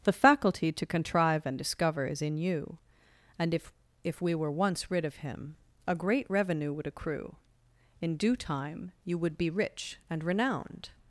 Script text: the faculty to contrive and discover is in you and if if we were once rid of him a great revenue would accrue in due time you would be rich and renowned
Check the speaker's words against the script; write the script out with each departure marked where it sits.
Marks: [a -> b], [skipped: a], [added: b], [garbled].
the faculty to contrive and discover is in you and if if we were once rid of him a great revenue would accrue in due time you would be rich and renowned